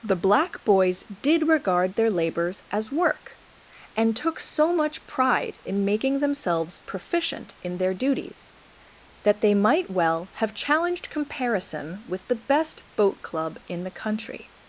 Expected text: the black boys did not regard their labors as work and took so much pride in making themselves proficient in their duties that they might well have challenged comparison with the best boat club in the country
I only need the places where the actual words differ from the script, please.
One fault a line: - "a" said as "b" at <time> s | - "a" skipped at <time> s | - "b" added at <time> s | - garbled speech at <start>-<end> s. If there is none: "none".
- "not" skipped at 1.5 s